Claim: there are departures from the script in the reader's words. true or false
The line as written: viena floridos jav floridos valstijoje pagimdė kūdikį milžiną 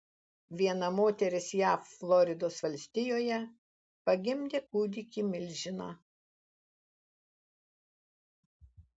true